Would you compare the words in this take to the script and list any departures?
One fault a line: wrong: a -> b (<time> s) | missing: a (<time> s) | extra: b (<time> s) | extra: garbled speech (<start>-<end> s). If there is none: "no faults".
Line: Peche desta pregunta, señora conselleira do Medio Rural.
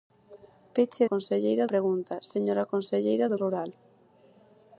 wrong: desta -> conselleira (1.1 s)
missing: Medio (3.4 s)